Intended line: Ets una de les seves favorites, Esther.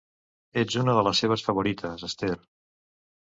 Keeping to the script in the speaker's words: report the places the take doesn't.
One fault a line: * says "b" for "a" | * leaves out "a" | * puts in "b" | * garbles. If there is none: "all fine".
all fine